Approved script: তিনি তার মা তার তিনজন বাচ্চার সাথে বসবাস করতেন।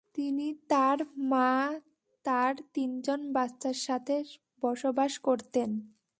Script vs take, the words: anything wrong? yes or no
no